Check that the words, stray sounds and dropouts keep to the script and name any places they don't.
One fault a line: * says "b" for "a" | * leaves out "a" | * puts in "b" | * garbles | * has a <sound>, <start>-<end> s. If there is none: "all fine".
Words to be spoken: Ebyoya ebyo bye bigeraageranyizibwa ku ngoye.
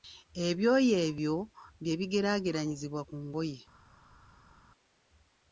all fine